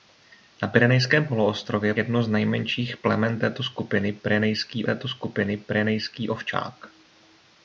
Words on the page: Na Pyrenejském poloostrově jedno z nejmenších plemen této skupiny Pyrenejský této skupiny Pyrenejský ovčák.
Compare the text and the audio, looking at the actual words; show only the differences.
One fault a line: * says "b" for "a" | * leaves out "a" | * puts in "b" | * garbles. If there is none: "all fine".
all fine